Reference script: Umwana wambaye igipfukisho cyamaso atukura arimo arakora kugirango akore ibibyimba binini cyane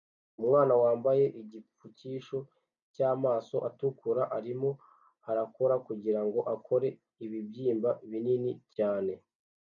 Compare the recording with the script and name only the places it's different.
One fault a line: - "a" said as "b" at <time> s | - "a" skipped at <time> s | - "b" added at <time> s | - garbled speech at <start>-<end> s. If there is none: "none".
none